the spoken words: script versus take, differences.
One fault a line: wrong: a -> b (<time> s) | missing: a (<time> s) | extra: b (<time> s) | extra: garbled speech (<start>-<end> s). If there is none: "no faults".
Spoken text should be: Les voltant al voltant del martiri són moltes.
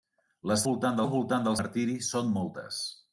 no faults